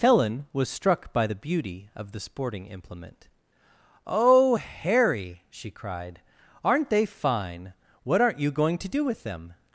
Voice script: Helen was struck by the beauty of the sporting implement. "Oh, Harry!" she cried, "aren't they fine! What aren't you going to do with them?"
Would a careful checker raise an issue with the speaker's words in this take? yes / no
no